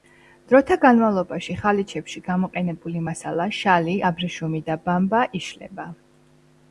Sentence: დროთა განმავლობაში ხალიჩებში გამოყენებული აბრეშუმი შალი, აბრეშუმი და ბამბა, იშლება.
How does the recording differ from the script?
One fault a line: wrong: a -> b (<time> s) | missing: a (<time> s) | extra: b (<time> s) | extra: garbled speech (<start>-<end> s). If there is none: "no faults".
wrong: აბრეშუმი -> მასალა (3.1 s)